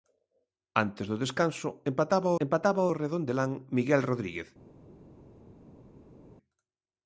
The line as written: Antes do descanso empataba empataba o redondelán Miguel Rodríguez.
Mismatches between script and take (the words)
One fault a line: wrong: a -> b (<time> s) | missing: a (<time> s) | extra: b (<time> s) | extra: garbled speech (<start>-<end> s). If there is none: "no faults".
no faults